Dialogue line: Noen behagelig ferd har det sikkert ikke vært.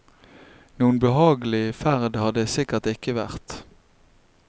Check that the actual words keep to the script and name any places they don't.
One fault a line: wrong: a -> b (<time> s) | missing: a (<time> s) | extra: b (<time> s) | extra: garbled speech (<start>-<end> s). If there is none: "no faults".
no faults